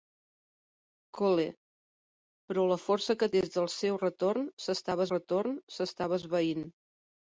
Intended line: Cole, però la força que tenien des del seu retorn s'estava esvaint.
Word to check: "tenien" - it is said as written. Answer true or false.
false